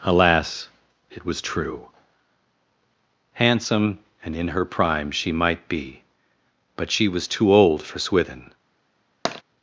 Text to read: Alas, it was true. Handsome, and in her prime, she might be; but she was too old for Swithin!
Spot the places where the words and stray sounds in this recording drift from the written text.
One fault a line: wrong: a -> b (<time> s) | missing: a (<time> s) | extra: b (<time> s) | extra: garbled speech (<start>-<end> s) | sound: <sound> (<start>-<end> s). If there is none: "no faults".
sound: tap (9.3-9.4 s)